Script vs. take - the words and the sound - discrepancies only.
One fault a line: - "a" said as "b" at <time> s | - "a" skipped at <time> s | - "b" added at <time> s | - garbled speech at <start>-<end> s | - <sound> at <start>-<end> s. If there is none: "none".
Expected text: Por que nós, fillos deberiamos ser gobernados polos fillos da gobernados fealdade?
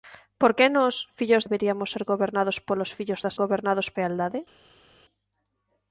none